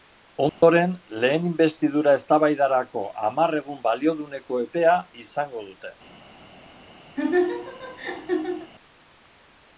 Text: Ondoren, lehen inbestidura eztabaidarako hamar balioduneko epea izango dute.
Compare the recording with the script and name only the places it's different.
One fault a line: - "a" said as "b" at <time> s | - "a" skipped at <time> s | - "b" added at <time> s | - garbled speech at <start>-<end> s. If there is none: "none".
- "egun" added at 3.6 s